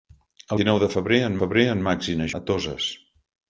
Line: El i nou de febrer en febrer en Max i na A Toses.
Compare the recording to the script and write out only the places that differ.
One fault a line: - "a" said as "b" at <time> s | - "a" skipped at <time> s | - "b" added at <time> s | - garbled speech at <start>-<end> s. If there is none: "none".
none